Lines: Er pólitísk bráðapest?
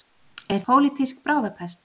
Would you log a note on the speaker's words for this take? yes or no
no